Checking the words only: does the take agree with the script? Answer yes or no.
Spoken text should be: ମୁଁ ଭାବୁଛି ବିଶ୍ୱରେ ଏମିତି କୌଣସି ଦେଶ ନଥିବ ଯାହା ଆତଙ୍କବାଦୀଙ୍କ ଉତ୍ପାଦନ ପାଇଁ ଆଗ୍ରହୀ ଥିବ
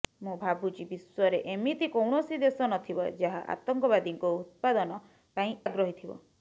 yes